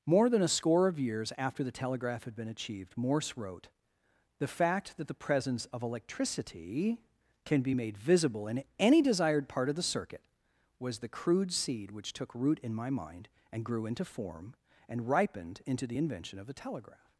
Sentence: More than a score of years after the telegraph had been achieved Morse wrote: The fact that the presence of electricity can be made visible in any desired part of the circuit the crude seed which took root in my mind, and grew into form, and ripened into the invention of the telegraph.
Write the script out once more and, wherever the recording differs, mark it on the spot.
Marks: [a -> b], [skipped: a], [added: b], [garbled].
More than a score of years after the telegraph had been achieved Morse wrote: The fact that the presence of electricity can be made visible in any desired part of the circuit [added: was] the crude seed which took root in my mind, and grew into form, and ripened into the invention of the telegraph.